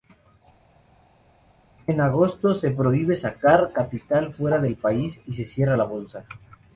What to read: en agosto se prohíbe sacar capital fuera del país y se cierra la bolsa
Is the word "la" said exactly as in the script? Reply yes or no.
yes